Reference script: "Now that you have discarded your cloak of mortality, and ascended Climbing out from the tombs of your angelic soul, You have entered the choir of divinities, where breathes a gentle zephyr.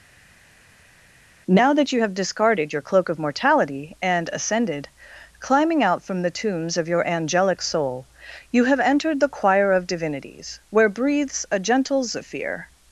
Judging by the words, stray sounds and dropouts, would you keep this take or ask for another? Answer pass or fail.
pass